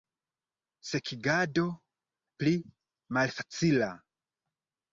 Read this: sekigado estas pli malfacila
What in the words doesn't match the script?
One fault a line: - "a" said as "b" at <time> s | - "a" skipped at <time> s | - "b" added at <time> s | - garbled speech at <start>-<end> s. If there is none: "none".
- "estas" skipped at 1.6 s